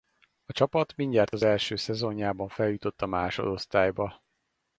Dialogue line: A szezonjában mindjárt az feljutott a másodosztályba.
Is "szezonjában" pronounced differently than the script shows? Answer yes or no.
yes